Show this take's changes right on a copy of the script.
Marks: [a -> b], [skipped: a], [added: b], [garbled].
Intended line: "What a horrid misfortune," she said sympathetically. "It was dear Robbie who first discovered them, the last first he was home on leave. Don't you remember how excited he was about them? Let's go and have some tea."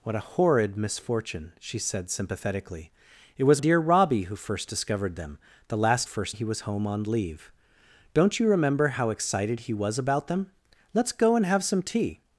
"What a horrid misfortune," she said sympathetically. "It was dear Robbie who first discovered them, the last first he was home on leave. Don't you remember how excited he was about them? Let's go and have some tea."